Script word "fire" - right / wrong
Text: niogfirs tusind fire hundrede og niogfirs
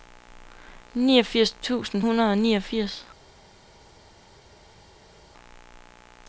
wrong